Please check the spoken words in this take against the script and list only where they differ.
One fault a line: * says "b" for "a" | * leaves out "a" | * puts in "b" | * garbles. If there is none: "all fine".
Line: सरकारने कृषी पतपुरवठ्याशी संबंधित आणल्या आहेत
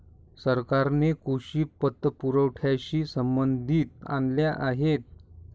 all fine